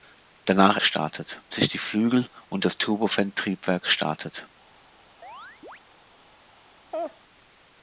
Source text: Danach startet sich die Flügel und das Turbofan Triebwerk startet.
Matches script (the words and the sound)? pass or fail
fail